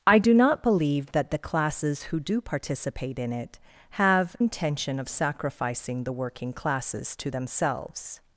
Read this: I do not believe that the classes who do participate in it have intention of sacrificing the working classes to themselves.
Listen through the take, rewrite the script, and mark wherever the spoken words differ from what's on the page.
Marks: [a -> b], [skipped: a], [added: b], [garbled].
I do not believe that the classes who do participate in it have intention of sacrificing the working classes to themselves.